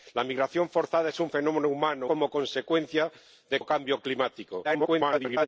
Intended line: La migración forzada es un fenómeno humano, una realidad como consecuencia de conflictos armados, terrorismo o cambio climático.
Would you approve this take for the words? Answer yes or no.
no